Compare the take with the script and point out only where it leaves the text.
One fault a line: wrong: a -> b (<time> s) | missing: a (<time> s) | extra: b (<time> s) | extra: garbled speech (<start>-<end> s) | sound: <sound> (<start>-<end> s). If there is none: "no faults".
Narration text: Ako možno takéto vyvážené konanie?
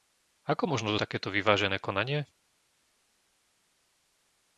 no faults